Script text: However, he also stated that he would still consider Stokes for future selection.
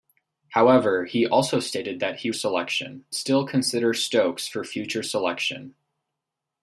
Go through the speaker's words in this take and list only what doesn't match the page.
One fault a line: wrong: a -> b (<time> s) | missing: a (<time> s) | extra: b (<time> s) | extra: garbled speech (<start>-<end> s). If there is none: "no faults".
wrong: would -> selection (2.3 s)